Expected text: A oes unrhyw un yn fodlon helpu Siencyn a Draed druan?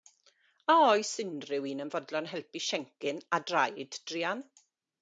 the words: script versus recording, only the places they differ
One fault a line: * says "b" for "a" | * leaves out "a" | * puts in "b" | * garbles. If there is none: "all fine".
all fine